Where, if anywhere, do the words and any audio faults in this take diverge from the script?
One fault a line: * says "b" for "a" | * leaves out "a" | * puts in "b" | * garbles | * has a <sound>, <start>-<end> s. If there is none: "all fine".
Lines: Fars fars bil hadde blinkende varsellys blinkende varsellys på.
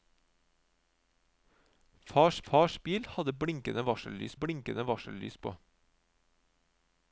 all fine